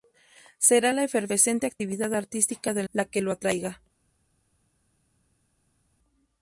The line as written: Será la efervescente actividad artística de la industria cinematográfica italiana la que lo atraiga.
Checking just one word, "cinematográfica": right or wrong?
wrong